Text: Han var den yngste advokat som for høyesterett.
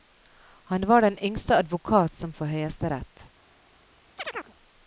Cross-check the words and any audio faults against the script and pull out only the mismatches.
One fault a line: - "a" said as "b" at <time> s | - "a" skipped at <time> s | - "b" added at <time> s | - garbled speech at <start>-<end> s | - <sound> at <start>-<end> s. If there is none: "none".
- chirp at 4.2-4.5 s